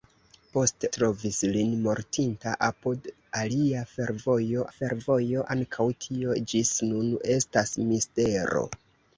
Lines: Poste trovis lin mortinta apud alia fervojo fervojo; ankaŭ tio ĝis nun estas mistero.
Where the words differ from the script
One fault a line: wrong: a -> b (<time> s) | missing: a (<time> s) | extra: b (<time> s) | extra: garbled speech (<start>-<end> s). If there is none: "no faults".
no faults